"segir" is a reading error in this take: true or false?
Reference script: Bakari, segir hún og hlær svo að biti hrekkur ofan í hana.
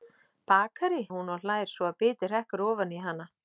true